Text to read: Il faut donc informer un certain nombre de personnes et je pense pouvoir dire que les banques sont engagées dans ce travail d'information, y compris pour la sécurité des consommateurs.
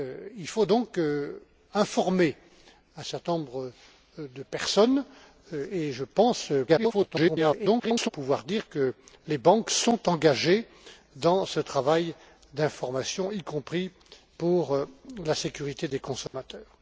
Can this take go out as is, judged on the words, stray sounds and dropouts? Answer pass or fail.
fail